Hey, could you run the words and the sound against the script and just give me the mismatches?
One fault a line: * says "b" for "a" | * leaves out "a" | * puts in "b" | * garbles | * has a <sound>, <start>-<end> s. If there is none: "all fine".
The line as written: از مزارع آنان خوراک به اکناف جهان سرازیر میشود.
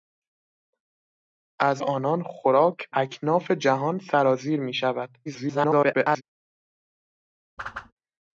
* leaves out "مزارع"
* leaves out "به"
* garbles
* has a whoosh, 7.6-7.9 s